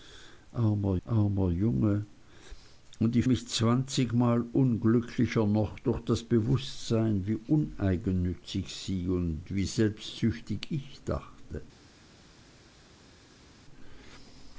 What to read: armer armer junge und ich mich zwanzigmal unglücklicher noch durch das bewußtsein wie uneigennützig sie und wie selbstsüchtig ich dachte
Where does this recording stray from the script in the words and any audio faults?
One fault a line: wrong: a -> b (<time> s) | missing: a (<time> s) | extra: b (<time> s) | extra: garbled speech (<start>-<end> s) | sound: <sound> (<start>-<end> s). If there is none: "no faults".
no faults